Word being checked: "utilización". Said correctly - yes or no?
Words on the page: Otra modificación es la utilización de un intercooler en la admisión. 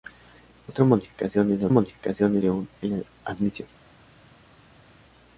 no